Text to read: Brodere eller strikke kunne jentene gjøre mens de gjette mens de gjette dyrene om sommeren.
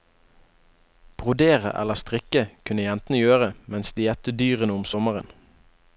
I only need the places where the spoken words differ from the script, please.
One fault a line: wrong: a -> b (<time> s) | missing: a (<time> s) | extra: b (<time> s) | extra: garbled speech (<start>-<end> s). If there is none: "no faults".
missing: mens de gjette (4.3 s)